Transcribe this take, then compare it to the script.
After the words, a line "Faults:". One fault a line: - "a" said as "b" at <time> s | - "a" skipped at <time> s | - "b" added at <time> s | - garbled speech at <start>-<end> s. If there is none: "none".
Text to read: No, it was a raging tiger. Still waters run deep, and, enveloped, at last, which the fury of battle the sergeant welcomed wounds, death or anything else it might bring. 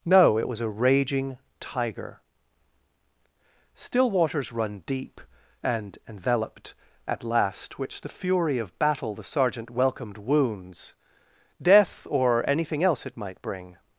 No, it was a raging tiger. Still waters run deep, and, enveloped, at last, which the fury of battle the sergeant welcomed wounds, death or anything else it might bring.
Faults:
none